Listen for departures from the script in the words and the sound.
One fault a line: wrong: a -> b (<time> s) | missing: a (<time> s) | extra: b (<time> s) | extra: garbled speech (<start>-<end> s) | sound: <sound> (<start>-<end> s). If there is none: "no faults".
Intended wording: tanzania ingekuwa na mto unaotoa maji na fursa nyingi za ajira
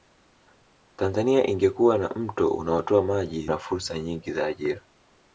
no faults